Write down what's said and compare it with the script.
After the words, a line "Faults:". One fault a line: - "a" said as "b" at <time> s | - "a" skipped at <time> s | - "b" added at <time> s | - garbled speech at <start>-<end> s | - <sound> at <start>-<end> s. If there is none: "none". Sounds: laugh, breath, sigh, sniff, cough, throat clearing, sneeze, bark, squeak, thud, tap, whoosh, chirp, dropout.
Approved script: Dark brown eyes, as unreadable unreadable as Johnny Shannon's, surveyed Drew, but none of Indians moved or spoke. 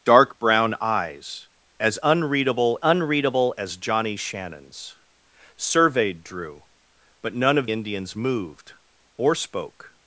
Dark brown eyes, as unreadable unreadable as Johnny Shannon's, surveyed Drew, but none of Indians moved or spoke.
Faults:
none